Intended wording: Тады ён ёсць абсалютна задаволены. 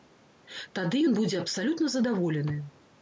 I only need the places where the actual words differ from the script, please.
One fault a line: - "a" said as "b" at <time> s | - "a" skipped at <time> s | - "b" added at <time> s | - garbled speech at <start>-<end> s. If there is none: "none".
- "ёсць" said as "будзе" at 1.2 s